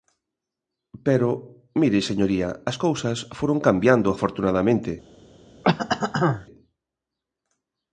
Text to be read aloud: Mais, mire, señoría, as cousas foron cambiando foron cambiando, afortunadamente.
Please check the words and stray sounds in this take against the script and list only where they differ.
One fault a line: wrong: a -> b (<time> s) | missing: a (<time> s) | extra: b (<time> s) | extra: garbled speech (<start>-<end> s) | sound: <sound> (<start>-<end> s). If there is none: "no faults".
wrong: Mais -> Pero (1.1 s)
missing: foron cambiando (4.1 s)
sound: throat clearing (5.6-6.5 s)